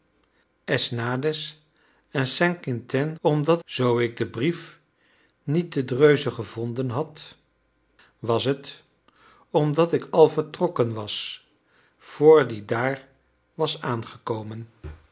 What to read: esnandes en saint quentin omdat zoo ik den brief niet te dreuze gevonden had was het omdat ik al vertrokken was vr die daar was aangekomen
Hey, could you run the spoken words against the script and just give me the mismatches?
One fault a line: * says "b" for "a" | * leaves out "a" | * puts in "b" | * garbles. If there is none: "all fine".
all fine